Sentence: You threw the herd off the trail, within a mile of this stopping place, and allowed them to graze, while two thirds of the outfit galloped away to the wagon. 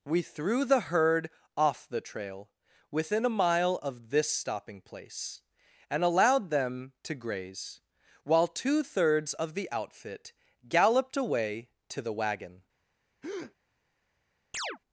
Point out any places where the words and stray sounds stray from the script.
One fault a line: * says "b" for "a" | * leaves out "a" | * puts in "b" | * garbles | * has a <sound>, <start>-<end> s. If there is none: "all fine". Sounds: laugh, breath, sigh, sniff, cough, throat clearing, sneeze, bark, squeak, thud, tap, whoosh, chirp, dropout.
* says "We" for "You"
* has a breath, 13.2-13.5 s
* has a chirp, 14.5-14.8 s